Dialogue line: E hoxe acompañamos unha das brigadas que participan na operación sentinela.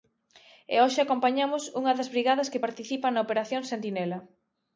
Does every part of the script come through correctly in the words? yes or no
yes